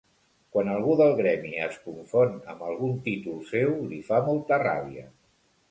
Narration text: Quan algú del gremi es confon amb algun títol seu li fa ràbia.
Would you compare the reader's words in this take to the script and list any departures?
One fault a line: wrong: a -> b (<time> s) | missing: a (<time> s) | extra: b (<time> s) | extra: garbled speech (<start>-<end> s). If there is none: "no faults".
extra: molta (4.3 s)